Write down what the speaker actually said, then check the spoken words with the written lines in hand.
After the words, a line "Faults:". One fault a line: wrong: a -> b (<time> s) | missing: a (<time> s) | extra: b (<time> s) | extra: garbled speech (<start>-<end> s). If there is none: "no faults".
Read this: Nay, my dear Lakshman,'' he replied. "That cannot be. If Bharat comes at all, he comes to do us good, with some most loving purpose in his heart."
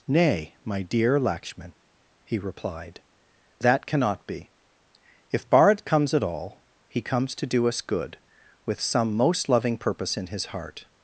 Nay, my dear Lakshman,'' he replied. "That cannot be. If Bharat comes at all, he comes to do us good, with some most loving purpose in his heart."
Faults:
no faults